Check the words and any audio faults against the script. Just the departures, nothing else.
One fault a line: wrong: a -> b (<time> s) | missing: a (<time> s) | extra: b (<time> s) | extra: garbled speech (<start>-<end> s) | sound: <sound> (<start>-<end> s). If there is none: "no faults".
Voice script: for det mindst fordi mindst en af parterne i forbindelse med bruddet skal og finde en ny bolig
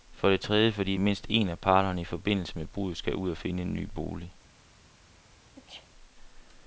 wrong: mindst -> tredje (0.4 s)
extra: ud (3.1 s)
sound: sneeze (5.6-5.9 s)